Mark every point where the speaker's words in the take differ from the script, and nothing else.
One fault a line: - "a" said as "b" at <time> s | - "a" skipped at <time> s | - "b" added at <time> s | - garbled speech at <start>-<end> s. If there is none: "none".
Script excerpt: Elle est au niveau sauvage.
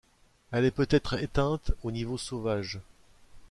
- "peut être éteinte" added at 0.7 s